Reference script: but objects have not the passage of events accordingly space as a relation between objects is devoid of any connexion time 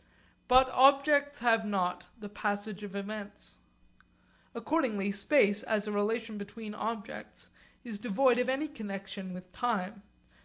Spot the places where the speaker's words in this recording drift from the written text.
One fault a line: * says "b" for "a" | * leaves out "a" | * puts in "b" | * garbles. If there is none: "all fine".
* puts in "with"